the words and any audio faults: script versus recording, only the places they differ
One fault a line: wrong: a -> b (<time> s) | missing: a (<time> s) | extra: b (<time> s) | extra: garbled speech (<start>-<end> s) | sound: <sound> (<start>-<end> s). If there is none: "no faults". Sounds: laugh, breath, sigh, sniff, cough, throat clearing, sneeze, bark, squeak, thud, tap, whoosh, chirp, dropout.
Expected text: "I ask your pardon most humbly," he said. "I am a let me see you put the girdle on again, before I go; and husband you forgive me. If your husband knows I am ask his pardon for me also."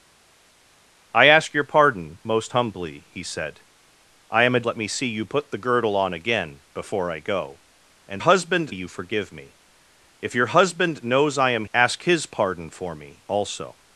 no faults